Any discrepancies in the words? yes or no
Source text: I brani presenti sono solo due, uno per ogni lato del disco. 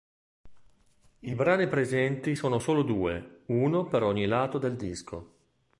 no